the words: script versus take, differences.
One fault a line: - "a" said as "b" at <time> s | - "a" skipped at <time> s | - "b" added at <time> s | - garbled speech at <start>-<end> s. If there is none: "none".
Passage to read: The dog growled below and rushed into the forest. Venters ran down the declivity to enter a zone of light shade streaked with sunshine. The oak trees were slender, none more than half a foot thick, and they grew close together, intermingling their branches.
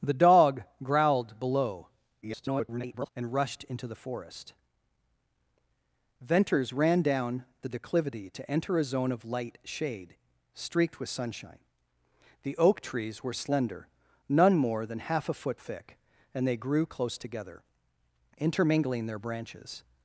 - garbled speech at 2.2-3.1 s